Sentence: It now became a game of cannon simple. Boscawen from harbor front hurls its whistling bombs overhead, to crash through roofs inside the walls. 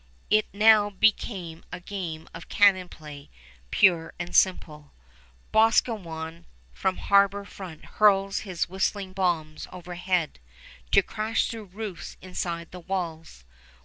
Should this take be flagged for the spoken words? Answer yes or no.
yes